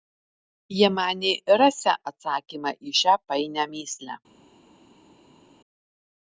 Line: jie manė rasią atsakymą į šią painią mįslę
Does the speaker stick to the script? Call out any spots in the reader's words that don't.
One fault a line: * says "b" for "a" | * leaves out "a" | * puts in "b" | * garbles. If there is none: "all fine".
all fine